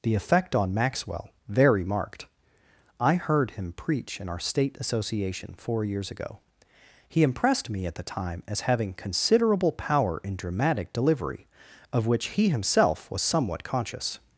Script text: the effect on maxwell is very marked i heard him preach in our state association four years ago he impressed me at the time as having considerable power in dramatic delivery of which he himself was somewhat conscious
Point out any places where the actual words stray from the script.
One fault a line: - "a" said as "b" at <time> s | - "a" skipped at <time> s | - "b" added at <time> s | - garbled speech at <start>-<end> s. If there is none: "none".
- "is" skipped at 1.3 s